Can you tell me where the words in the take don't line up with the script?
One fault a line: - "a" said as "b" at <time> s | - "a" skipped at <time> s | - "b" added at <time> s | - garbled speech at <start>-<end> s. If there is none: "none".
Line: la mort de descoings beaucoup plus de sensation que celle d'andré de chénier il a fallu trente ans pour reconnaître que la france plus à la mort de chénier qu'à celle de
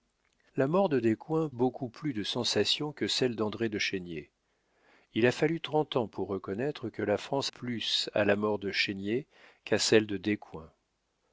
none